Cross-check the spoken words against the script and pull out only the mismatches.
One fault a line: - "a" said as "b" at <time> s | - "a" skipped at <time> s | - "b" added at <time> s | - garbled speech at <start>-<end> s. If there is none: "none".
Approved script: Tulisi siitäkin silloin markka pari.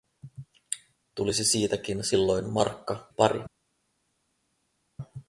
none